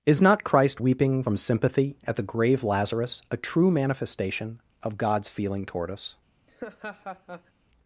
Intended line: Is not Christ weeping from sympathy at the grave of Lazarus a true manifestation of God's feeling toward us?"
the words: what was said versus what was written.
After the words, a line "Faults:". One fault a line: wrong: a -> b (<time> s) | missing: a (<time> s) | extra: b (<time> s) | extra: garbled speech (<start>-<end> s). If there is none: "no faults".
Is not Christ weeping from sympathy at the grave Lazarus a true manifestation of God's feeling toward us?"
Faults:
missing: of (2.6 s)